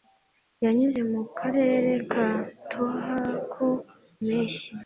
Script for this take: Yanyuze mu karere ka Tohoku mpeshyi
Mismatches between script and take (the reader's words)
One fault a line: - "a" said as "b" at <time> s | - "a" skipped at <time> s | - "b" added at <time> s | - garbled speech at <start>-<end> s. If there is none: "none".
none